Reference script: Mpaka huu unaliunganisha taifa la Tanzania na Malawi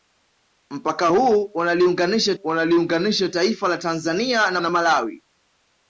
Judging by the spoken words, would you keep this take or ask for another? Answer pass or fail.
fail